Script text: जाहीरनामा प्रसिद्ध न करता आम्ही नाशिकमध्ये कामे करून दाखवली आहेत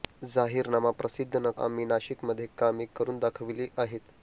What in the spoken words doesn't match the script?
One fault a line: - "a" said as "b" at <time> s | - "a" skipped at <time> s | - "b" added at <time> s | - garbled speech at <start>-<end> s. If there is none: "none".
- "करता" skipped at 1.5 s